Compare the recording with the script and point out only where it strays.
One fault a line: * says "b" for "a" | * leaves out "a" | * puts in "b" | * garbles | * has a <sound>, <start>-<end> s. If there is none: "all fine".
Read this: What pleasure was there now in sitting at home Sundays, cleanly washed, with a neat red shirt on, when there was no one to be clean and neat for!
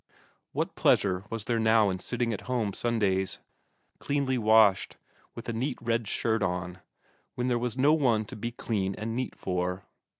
all fine